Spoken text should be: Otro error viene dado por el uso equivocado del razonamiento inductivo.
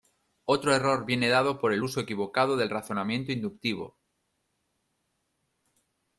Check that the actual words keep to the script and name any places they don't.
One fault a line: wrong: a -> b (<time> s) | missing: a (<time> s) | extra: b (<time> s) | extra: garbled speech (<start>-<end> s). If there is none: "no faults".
no faults